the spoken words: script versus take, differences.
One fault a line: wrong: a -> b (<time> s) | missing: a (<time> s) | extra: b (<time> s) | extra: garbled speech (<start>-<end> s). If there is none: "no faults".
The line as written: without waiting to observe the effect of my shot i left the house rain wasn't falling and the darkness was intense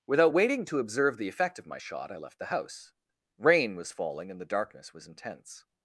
wrong: wasn't -> was (3.8 s)